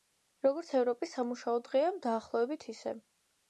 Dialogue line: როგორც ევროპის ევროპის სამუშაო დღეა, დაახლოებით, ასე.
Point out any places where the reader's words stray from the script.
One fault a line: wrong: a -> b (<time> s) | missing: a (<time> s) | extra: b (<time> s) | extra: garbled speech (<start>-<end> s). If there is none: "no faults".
missing: ევროპის (1.1 s)
wrong: ასე -> ისე (2.8 s)